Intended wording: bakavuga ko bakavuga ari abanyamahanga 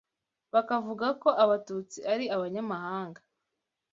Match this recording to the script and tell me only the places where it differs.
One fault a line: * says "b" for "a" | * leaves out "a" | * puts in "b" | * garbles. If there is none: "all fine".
* says "abatutsi" for "bakavuga"